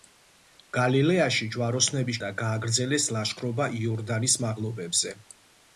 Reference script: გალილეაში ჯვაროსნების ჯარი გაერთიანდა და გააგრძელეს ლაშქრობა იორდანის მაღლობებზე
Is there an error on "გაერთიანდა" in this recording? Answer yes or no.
yes